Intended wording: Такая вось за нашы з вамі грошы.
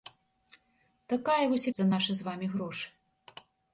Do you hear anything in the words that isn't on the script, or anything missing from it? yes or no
no